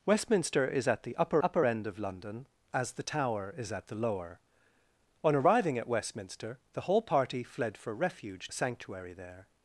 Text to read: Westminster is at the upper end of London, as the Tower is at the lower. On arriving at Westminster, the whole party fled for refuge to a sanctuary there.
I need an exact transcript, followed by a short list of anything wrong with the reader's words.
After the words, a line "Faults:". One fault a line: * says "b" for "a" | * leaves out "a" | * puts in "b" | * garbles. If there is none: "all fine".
Westminster is at the upper upper end of London, as the Tower is at the lower. On arriving at Westminster, the whole party fled for refuge a sanctuary there.
Faults:
* puts in "upper"
* leaves out "to"